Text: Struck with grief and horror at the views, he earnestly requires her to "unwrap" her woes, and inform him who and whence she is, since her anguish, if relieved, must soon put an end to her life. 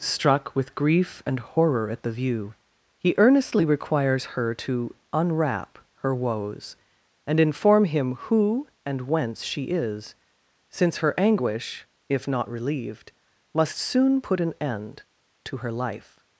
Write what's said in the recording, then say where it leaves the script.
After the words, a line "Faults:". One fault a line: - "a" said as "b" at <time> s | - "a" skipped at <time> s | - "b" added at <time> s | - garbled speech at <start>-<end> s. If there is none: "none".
Struck with grief and horror at the view, he earnestly requires her to "unwrap" her woes, and inform him who and whence she is, since her anguish, if not relieved, must soon put an end to her life.
Faults:
- "views" said as "view" at 2.1 s
- "not" added at 12.3 s